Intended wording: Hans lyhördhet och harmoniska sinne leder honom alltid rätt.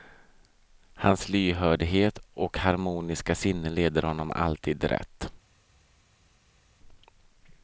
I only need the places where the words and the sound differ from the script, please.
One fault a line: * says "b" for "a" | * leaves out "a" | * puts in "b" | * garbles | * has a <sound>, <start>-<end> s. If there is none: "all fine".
all fine